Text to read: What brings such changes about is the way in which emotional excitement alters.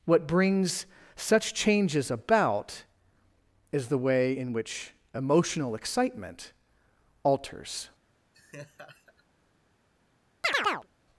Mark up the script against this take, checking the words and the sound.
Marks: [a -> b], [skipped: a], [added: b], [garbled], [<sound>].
What brings such changes about is the way in which emotional excitement alters. [laugh] [chirp]